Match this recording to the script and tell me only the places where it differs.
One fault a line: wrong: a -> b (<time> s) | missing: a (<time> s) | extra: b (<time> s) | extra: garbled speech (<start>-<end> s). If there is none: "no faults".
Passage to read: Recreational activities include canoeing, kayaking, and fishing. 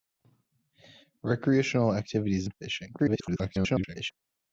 missing: include canoeing kayaking (2.5 s)
extra: garbled speech (3.0-4.1 s)